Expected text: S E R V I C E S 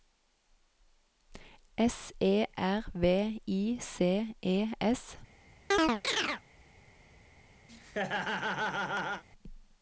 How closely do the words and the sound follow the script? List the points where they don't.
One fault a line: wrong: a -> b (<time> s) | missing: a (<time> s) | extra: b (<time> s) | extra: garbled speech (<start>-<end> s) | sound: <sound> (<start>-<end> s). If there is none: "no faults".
sound: chirp (5.7-6.4 s)
sound: laugh (7.7-9.2 s)